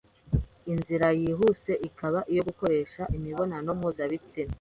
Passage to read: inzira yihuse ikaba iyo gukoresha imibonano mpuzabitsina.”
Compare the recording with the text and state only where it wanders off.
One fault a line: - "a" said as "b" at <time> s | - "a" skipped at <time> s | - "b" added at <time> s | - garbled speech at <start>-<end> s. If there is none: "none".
none